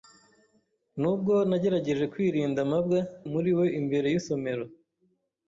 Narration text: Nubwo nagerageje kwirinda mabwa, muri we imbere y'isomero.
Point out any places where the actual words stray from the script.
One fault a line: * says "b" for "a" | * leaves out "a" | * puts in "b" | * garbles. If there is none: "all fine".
all fine